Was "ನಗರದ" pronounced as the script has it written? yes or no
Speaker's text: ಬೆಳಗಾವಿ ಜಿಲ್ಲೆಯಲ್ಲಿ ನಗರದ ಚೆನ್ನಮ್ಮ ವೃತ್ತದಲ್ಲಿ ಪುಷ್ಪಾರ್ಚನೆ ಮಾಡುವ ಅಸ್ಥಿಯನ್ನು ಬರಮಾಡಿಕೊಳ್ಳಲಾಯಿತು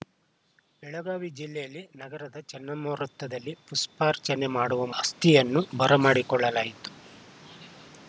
yes